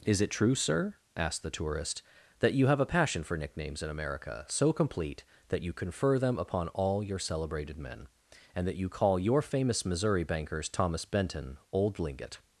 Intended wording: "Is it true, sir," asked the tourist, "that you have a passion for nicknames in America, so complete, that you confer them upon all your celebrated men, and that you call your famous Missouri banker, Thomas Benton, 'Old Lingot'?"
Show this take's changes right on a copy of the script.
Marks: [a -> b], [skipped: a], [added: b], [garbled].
"Is it true, sir," asked the tourist, "that you have a passion for nicknames in America, so complete, that you confer them upon all your celebrated men, and that you call your famous Missouri [banker, -> bankers] Thomas Benton, 'Old Lingot'?"